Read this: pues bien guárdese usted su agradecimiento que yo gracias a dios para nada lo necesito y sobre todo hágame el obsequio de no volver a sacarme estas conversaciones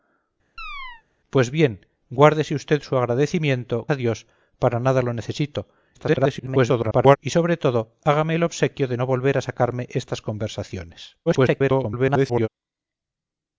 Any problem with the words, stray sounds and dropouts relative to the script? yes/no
yes